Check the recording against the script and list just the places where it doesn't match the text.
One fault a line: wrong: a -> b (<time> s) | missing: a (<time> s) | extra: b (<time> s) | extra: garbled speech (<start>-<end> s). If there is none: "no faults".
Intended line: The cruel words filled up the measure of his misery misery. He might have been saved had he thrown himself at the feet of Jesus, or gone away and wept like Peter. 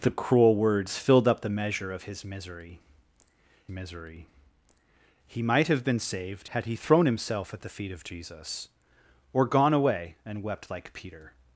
no faults